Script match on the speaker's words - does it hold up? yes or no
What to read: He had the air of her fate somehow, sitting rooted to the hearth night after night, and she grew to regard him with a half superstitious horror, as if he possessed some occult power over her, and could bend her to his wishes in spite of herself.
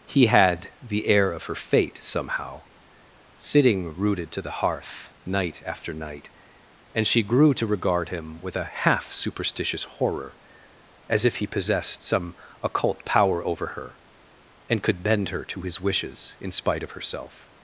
yes